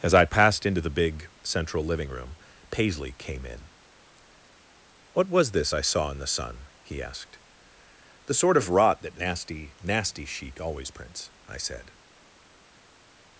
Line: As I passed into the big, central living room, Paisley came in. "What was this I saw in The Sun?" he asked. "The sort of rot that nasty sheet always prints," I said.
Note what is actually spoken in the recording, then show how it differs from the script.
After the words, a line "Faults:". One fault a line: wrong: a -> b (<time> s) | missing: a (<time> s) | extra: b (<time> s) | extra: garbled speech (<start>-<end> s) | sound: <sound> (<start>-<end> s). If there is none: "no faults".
As I passed into the big, central living room, Paisley came in. "What was this I saw in The Sun?" he asked. "The sort of rot that nasty nasty sheet always prints," I said.
Faults:
extra: nasty (9.8 s)